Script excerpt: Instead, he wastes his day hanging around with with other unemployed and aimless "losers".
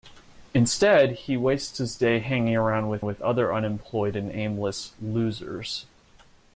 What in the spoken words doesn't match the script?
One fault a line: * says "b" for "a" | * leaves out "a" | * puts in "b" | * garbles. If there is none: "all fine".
all fine